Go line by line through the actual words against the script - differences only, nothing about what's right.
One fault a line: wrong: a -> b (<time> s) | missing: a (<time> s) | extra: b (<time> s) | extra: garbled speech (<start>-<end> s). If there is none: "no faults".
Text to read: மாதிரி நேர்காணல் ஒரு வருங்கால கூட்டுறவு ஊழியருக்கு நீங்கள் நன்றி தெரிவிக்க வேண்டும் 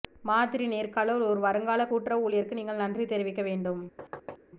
no faults